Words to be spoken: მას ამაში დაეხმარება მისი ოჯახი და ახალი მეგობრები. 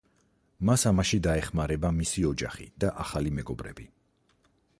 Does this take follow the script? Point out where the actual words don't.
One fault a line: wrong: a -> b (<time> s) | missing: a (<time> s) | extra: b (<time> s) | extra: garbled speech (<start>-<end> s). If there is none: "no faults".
no faults